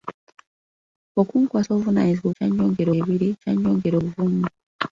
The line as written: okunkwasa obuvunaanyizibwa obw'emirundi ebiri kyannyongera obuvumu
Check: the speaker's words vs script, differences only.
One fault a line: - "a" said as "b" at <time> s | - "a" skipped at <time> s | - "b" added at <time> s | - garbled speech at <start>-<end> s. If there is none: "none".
- "obw'emirundi" said as "kyannyongera" at 2.3 s